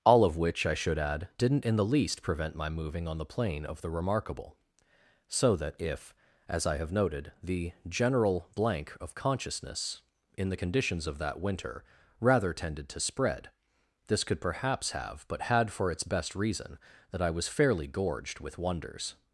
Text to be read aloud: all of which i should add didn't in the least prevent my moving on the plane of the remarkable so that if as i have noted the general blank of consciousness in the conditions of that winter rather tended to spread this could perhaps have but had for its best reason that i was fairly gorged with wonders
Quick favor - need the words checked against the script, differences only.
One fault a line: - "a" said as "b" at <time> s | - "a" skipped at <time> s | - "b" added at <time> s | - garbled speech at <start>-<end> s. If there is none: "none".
none